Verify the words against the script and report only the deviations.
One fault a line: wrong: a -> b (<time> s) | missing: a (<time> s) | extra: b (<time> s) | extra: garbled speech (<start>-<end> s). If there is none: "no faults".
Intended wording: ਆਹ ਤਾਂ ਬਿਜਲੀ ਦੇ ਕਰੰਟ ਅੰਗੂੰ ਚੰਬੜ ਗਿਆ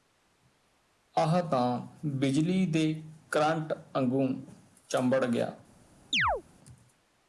no faults